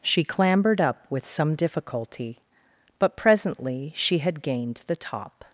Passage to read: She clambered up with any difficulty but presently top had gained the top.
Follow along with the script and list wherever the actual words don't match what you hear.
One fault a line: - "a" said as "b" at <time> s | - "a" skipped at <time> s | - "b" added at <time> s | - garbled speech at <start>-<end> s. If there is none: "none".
- "any" said as "some" at 1.3 s
- "top" said as "she" at 4.0 s